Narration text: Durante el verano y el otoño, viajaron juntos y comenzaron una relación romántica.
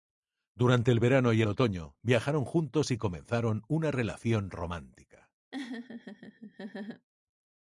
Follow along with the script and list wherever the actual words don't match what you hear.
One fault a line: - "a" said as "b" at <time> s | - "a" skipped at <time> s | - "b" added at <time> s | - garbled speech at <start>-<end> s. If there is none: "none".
none